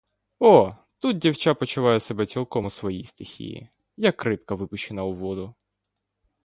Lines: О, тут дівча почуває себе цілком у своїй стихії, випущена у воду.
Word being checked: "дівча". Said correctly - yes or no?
yes